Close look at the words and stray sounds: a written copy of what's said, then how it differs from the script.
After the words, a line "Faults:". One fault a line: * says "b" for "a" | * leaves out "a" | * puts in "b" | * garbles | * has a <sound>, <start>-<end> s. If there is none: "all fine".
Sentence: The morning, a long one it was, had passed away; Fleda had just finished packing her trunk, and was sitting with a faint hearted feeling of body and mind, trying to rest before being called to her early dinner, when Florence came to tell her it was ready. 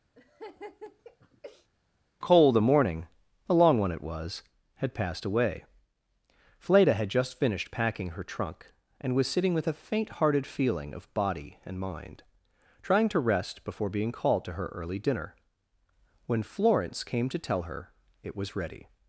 cole The morning, a long one it was, had passed away; Fleda had just finished packing her trunk, and was sitting with a faint hearted feeling of body and mind, trying to rest before being called to her early dinner, when Florence came to tell her it was ready.
Faults:
* has a laugh, 0.1-1.7 s
* puts in "cole"